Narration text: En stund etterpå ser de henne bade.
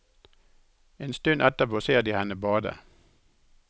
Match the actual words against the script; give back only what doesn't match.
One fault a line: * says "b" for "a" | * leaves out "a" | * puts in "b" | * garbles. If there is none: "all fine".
all fine